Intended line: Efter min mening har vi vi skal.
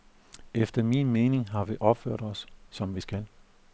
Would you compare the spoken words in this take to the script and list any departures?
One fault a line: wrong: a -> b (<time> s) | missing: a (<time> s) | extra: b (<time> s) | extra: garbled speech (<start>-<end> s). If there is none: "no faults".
extra: opført os som (1.8 s)